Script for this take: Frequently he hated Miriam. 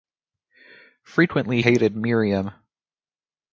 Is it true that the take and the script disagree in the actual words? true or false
true